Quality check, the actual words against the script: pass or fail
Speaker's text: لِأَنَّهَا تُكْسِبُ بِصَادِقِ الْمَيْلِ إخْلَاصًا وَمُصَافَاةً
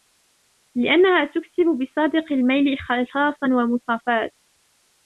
pass